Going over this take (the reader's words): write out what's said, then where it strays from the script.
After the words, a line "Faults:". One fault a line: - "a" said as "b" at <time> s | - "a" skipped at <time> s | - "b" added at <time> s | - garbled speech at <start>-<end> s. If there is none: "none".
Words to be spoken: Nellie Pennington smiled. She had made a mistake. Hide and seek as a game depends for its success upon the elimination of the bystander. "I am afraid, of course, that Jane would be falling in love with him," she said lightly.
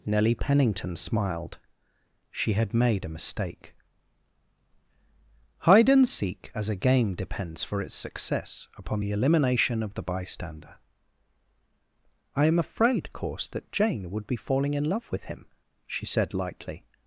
Nellie Pennington smiled. She had made a mistake. Hide and seek as a game depends for its success upon the elimination of the bystander. "I am afraid, course, that Jane would be falling in love with him," she said lightly.
Faults:
- "of" skipped at 13.1 s